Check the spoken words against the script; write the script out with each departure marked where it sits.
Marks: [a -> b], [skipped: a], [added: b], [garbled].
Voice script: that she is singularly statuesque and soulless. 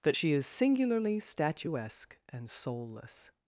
that she is singularly statuesque and soulless.